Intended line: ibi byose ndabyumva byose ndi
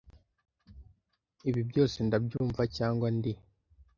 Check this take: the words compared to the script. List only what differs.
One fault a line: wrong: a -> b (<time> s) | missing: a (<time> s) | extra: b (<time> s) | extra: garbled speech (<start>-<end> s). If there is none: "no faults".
wrong: byose -> cyangwa (2.7 s)